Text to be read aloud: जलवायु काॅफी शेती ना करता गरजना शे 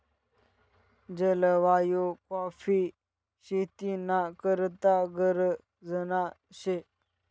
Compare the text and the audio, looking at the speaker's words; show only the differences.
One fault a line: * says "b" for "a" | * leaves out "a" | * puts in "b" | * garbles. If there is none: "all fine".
all fine